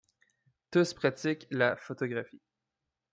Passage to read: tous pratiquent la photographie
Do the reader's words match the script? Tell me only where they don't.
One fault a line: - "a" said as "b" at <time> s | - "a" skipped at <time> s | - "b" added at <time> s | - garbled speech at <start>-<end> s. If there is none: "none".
none